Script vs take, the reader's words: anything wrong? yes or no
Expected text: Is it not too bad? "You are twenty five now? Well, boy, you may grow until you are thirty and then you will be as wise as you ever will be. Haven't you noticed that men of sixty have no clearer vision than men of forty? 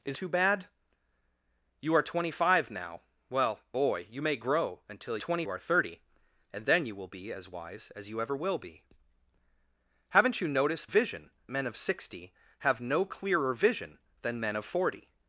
yes